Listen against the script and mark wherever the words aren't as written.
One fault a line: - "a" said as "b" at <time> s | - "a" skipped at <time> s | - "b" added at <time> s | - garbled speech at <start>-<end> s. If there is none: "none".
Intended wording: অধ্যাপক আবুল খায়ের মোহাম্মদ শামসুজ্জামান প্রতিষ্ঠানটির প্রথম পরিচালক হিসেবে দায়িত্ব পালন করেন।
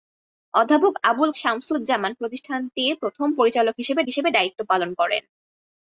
- "খায়ের মোহাম্মদ" skipped at 1.3 s
- "হিসেবে" added at 4.1 s